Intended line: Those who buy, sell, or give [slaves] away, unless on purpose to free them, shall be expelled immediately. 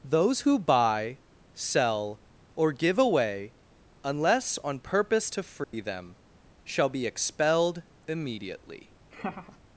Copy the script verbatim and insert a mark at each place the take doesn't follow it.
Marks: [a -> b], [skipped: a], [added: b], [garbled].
Those who buy, sell, or give [skipped: [slaves]] away, unless on purpose to free them, shall be expelled immediately.